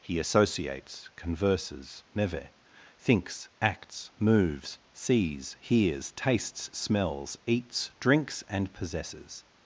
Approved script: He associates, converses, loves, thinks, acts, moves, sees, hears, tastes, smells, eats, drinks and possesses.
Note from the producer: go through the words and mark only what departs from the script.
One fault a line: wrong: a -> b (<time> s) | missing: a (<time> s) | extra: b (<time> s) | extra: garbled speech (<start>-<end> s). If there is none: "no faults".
wrong: loves -> meve (2.1 s)